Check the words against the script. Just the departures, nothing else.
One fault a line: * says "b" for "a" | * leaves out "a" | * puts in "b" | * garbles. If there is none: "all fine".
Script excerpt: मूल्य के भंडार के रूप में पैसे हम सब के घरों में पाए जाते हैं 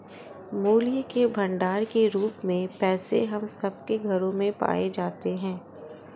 all fine